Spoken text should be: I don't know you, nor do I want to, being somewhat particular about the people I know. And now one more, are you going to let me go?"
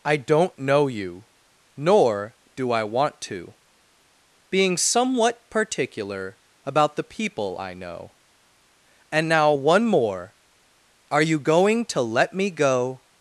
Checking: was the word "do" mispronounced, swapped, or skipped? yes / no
no